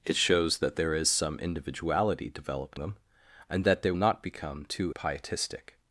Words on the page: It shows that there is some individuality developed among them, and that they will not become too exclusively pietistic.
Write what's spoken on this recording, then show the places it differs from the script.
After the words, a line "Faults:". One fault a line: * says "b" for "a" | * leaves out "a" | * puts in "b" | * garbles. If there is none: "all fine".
It shows that there is some individuality developed them, and that they not become too pietistic.
Faults:
* leaves out "among"
* leaves out "will"
* leaves out "exclusively"